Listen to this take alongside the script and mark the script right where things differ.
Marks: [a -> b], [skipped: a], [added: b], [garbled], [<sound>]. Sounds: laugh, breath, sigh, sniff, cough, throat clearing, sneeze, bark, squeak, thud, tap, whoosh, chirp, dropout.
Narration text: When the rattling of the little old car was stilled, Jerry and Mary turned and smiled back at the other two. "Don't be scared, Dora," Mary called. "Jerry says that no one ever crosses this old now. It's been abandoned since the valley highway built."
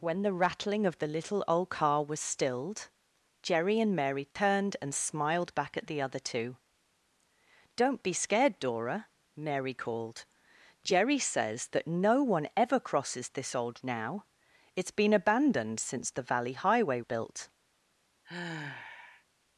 When the rattling of the little old car was stilled, Jerry and Mary turned [dropout] and smiled back at the other two. "Don't be scared, Dora," Mary called. "Jerry says that no one ever crosses this old now. It's been abandoned since the valley highway built." [sigh]